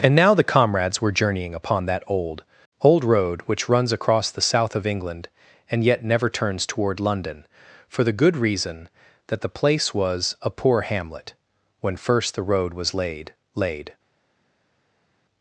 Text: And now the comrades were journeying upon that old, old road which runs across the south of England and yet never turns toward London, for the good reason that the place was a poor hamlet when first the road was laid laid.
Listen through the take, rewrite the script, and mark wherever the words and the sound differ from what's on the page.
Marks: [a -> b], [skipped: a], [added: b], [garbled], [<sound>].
And now the comrades were journeying upon that old, old road which runs across the south of England and yet never turns toward London, for the good reason that the place was a poor hamlet when first the road was laid laid.